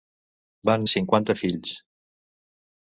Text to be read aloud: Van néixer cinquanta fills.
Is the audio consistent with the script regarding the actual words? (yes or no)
no